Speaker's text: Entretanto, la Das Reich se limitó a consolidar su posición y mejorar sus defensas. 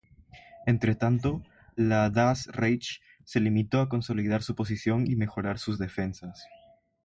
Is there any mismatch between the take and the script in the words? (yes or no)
no